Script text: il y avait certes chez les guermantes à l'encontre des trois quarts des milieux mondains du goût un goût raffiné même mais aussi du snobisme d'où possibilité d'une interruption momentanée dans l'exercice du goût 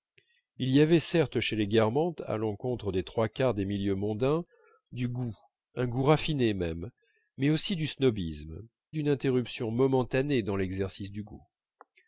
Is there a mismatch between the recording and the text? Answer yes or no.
yes